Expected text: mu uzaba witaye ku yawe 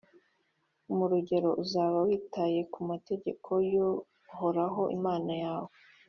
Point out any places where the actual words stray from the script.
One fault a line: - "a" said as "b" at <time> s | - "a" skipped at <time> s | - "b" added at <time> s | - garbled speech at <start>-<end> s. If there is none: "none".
- "rugero" added at 1.1 s
- "mategeko y'uhoraho imana" added at 2.9 s